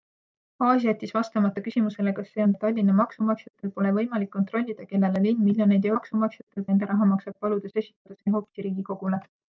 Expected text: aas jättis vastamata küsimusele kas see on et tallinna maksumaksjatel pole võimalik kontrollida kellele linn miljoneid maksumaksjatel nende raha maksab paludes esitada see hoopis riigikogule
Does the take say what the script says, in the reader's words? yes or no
yes